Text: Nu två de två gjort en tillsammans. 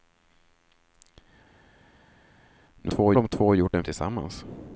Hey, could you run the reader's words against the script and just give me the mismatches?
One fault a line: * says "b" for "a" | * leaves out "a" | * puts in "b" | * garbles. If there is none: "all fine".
all fine